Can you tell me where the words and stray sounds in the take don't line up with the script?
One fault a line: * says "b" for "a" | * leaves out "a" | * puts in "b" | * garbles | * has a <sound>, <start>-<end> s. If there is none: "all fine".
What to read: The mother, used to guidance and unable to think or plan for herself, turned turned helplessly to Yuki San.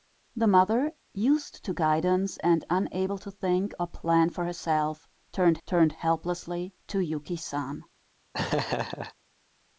* has a laugh, 8.3-9.1 s